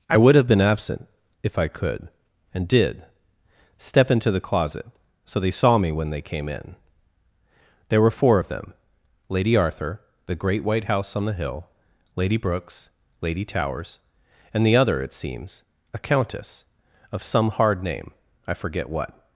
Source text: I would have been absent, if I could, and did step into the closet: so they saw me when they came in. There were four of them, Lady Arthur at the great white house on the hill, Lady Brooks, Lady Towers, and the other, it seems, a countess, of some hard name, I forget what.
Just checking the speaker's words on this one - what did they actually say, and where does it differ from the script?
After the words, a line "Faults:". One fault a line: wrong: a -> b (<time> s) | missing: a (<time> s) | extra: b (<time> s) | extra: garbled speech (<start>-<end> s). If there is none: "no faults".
I would have been absent, if I could, and did step into the closet: so they saw me when they came in. There were four of them, Lady Arthur the great white house on the hill, Lady Brooks, Lady Towers, and the other, it seems, a countess, of some hard name, I forget what.
Faults:
missing: at (10.0 s)